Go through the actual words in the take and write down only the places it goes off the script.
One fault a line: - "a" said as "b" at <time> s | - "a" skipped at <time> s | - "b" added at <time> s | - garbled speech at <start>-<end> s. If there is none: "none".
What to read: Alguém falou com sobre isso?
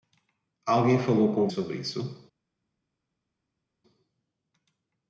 none